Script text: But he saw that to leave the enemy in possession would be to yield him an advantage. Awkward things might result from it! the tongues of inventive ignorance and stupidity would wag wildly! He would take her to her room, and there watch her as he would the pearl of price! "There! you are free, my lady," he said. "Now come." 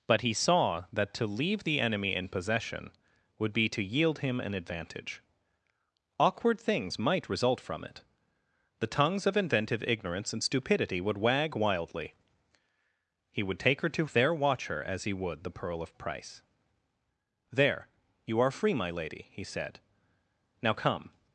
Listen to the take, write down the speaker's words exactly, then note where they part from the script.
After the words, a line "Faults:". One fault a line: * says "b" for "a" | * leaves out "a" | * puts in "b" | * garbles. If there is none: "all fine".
But he saw that to leave the enemy in possession would be to yield him an advantage. Awkward things might result from it! the tongues of inventive ignorance and stupidity would wag wildly! He would take her to there watch her as he would the pearl of price! "There! you are free, my lady," he said. "Now come."
Faults:
* leaves out "her room and"